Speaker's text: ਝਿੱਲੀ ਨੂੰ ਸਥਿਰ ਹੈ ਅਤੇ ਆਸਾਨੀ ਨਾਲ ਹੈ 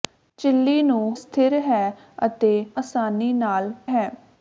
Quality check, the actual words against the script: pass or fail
pass